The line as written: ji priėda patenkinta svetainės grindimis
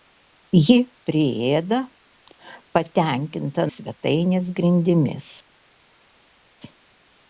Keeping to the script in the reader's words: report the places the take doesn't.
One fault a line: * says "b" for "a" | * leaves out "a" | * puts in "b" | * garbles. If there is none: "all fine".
all fine